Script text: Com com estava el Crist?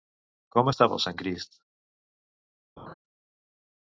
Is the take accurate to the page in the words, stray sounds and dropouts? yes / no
no